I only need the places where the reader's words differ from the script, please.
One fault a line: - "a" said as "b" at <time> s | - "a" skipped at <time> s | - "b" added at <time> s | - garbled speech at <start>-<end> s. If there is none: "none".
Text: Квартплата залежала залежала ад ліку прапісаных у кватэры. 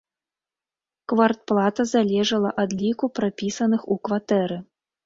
- "залежала" skipped at 2.5 s